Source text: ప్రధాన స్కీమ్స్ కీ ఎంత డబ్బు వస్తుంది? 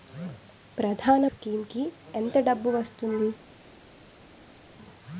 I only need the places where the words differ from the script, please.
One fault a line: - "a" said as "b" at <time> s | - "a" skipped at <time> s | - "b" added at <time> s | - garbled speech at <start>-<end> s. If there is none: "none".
none